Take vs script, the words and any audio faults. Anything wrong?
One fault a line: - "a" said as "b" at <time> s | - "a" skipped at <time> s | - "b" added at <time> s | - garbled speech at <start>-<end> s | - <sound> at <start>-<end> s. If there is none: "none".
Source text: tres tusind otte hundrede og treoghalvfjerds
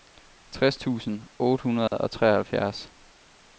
- dropout at 1.9-1.9 s